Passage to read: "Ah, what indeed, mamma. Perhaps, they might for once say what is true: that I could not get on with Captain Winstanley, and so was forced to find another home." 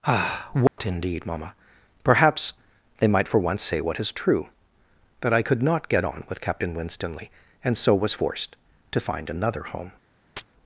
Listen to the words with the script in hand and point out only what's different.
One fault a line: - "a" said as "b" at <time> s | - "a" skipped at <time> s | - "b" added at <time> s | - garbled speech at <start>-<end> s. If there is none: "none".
none